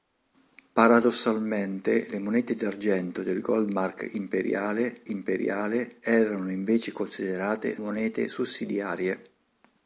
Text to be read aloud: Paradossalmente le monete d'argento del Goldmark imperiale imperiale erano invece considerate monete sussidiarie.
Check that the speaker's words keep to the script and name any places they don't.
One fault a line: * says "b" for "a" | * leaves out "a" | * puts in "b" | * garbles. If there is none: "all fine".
all fine